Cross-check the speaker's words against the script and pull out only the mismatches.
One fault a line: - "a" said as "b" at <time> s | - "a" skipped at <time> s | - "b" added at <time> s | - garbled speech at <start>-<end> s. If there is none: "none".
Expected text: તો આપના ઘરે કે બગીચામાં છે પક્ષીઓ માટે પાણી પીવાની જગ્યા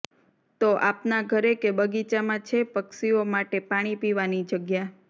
none